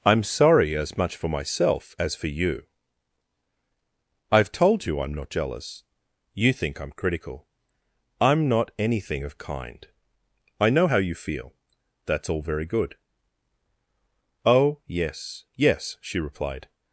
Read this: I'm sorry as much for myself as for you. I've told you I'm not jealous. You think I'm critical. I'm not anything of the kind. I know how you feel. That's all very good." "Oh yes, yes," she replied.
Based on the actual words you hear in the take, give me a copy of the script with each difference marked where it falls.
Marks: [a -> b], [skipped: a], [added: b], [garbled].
I'm sorry as much for myself as for you. I've told you I'm not jealous. You think I'm critical. I'm not anything of [skipped: the] kind. I know how you feel. That's all very good." "Oh yes, yes," she replied.